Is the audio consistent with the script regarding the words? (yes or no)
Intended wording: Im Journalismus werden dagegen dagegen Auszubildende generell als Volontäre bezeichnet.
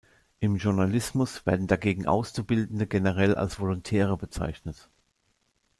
no